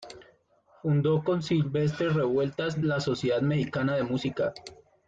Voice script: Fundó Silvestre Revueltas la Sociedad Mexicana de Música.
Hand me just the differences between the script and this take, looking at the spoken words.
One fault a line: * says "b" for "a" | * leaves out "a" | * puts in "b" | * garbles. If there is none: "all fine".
* puts in "con"